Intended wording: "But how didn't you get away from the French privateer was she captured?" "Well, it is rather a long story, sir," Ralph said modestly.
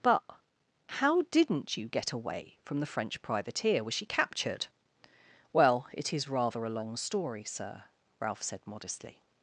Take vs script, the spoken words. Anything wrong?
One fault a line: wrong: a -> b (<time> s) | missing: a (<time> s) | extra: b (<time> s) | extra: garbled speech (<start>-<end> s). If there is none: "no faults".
no faults